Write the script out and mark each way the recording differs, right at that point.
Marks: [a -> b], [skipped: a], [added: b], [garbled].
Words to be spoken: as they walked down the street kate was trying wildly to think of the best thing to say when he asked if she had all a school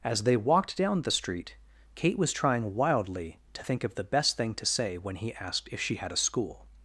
as they walked down the street kate was trying wildly to think of the best thing to say when he asked if she had [skipped: all] a school